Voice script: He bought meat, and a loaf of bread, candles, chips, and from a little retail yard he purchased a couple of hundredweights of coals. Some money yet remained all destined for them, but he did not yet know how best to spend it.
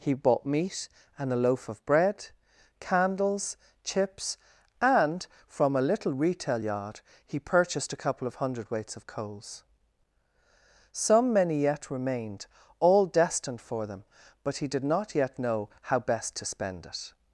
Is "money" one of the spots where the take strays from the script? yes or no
yes